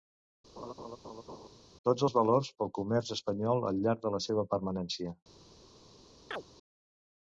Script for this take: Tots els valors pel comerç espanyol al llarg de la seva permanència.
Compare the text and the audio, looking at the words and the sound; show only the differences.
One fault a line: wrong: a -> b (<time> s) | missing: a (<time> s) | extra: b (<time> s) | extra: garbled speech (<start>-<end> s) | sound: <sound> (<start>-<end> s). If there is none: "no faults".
sound: laugh (0.6-1.5 s)
sound: chirp (6.3-6.4 s)